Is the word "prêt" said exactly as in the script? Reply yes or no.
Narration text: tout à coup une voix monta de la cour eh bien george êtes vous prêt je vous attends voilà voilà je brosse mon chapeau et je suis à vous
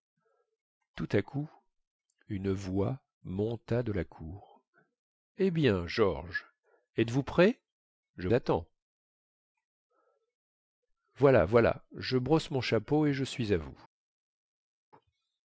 yes